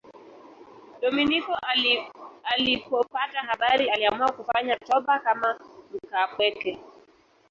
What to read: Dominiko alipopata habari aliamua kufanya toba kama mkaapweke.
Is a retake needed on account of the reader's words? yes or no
no